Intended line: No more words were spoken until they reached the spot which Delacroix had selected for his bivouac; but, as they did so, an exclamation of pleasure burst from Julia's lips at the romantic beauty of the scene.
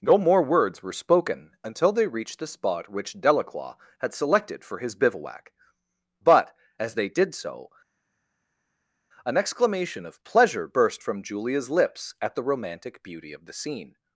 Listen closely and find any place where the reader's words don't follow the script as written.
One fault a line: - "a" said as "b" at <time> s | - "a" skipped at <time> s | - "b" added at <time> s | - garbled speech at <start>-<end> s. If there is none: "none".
none